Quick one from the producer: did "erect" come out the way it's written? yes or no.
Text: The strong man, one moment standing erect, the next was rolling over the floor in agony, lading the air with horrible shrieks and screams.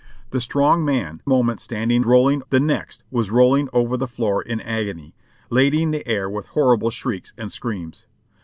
no